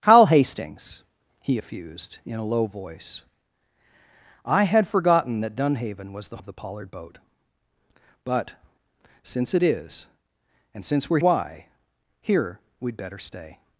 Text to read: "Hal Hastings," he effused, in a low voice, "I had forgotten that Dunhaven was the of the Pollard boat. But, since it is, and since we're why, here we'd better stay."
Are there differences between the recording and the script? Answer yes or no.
no